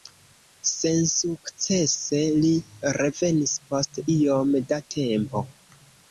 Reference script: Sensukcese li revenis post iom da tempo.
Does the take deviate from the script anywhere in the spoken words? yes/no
no